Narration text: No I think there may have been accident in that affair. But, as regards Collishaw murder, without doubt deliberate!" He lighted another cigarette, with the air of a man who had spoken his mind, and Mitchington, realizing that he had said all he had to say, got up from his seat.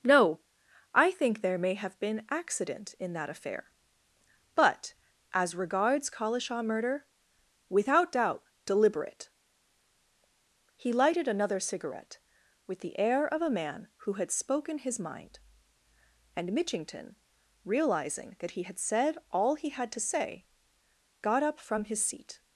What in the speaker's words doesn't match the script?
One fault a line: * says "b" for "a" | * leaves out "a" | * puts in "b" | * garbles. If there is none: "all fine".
all fine